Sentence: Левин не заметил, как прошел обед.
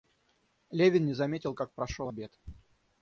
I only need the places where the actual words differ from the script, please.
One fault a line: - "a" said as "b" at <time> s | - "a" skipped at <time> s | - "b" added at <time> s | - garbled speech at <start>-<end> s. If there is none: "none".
none